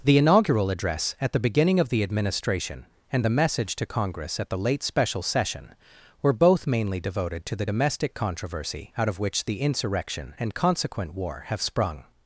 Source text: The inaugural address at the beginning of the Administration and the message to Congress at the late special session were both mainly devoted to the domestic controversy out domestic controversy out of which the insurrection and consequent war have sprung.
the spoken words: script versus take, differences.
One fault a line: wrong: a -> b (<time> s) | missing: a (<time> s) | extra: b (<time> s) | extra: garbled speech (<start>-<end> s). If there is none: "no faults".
missing: domestic controversy out (9.1 s)